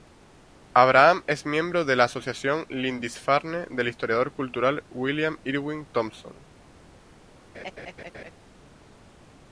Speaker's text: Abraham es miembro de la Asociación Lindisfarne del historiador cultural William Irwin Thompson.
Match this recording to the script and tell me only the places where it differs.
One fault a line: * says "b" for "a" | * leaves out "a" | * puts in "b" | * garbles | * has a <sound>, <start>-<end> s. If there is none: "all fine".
* has a laugh, 7.5-8.3 s